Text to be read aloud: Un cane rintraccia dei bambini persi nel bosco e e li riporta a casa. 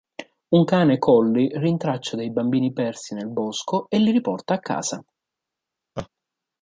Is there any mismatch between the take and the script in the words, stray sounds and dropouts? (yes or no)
yes